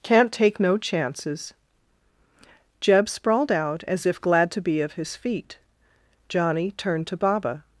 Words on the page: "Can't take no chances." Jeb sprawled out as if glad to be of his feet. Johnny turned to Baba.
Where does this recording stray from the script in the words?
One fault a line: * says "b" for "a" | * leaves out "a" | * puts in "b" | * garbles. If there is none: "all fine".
all fine